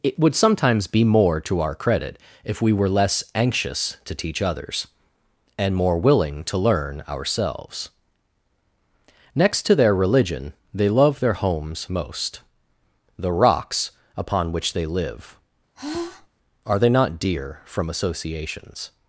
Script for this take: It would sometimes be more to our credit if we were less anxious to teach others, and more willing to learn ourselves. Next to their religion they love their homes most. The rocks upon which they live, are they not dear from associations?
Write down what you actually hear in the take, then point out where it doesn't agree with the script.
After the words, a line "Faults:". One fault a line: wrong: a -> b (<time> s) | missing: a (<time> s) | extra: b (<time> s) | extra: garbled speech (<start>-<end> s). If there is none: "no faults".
It would sometimes be more to our credit if we were less anxious to teach others, and more willing to learn ourselves. Next to their religion they love their homes most. The rocks upon which they live, are they not dear from associations?
Faults:
no faults